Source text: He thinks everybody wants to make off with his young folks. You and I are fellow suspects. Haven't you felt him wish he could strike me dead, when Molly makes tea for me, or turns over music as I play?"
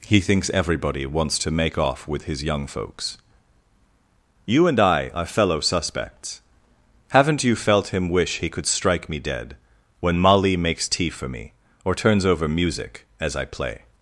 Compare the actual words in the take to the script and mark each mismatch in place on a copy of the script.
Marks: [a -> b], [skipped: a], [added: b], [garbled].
He thinks everybody wants to make off with his young folks. You and I are fellow suspects. Haven't you felt him wish he could strike me dead, when Molly makes tea for me, or turns over music as I play?"